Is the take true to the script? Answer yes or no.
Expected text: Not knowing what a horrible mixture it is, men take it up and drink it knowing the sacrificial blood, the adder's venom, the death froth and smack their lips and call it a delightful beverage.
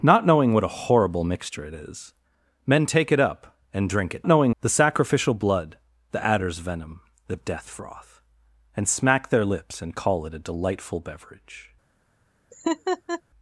yes